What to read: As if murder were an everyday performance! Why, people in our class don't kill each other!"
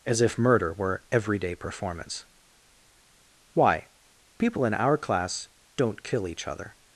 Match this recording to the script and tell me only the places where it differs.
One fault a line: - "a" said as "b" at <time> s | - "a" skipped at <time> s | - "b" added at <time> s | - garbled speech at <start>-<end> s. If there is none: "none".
- "an" skipped at 1.0 s